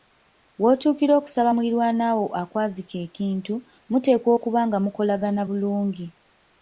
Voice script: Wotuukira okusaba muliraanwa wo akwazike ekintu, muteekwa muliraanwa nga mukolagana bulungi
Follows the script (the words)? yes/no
no